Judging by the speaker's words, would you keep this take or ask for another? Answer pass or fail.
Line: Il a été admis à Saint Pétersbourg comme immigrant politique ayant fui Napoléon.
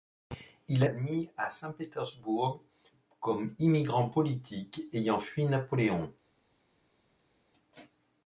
fail